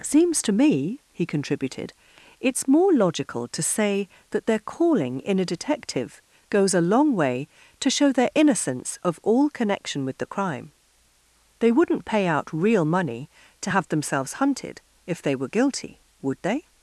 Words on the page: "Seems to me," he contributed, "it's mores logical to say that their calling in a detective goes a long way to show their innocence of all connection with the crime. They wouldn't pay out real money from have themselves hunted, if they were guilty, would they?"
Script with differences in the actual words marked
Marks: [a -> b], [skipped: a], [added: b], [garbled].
"Seems to me," he contributed, "it's [mores -> more] logical to say that their calling in a detective goes a long way to show their innocence of all connection with the crime. They wouldn't pay out real money [from -> to] have themselves hunted, if they were guilty, would they?"